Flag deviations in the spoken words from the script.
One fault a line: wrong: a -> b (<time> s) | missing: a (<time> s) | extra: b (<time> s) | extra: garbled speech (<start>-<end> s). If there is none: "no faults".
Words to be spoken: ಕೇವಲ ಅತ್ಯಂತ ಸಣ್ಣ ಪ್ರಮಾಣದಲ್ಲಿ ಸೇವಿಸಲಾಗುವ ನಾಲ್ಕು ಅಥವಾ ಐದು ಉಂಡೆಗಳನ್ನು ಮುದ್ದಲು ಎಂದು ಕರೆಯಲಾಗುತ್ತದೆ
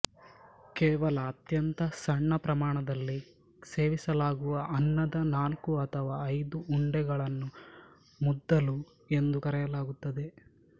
extra: ಅನ್ನದ (4.8 s)